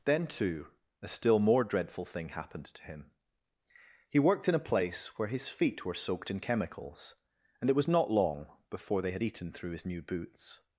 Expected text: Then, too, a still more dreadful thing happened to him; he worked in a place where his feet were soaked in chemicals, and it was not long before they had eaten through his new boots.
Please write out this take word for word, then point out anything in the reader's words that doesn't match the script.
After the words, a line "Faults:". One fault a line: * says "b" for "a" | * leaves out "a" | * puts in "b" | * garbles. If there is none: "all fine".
Then, too, a still more dreadful thing happened to him; he worked in a place where his feet were soaked in chemicals, and it was not long before they had eaten through his new boots.
Faults:
all fine